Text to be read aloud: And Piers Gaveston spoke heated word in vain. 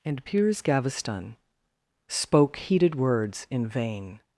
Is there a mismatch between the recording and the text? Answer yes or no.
yes